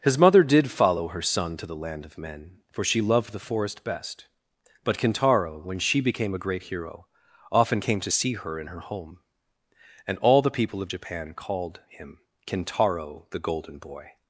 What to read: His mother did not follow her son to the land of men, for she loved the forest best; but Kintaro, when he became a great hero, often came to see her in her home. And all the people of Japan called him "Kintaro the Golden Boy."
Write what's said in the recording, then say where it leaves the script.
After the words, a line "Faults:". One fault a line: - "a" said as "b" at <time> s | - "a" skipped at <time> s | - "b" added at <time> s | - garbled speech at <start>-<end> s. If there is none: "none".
His mother did follow her son to the land of men, for she loved the forest best; but Kintaro, when she became a great hero, often came to see her in her home. And all the people of Japan called him "Kintaro the Golden Boy."
Faults:
- "not" skipped at 0.7 s
- "he" said as "she" at 5.8 s